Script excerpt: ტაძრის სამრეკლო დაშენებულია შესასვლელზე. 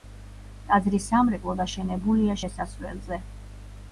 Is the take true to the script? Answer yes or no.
yes